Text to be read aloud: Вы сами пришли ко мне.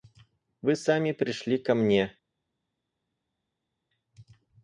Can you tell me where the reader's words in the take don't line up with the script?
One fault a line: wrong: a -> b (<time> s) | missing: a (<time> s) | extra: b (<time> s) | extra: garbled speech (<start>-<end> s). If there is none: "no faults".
no faults